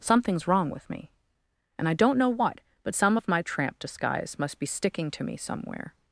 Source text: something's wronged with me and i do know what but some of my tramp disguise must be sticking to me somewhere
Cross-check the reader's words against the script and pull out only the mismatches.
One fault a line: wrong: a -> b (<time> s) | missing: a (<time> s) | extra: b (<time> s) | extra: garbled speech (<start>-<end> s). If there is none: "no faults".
wrong: wronged -> wrong (0.5 s)
wrong: do -> don't (1.9 s)